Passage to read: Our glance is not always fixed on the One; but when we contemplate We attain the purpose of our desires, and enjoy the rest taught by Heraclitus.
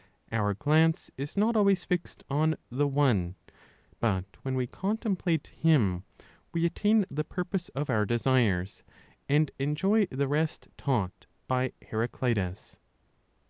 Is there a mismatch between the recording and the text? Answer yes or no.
yes